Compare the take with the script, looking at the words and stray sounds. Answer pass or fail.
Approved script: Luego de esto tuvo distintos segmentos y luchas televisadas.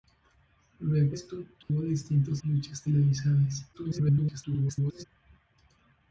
fail